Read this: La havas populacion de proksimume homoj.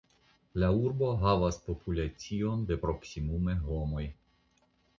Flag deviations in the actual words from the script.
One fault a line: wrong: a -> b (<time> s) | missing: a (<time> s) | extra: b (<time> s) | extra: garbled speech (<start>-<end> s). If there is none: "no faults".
extra: urbo (0.8 s)